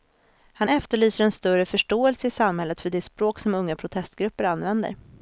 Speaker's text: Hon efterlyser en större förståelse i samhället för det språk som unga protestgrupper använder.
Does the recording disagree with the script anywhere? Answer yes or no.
yes